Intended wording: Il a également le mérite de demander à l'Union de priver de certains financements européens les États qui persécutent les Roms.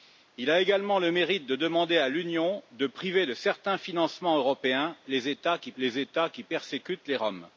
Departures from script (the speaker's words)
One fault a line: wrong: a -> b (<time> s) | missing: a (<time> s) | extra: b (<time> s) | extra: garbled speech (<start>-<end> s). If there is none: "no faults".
extra: les États qui (5.8 s)